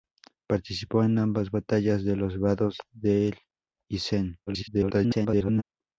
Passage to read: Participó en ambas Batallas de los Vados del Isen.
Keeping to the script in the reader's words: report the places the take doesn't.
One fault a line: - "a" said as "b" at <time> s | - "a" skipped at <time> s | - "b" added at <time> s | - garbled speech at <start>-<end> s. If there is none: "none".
- garbled speech at 4.5-5.6 s